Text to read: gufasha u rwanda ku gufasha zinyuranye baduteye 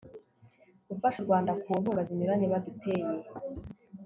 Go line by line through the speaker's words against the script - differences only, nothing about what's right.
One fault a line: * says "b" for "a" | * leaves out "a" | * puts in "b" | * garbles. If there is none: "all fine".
* says "nkunga" for "gufasha"